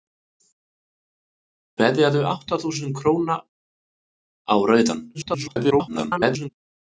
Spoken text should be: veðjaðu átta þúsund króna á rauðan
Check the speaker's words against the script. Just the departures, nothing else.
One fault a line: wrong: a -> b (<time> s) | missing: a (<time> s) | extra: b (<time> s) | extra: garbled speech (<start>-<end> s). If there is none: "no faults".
extra: garbled speech (5.1-6.5 s)